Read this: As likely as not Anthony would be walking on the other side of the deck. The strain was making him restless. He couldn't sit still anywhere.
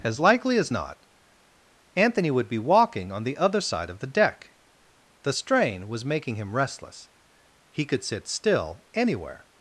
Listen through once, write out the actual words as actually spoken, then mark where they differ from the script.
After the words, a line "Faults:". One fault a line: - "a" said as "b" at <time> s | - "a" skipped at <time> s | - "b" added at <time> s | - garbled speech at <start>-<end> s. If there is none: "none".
As likely as not Anthony would be walking on the other side of the deck. The strain was making him restless. He could sit still anywhere.
Faults:
- "couldn't" said as "could" at 7.8 s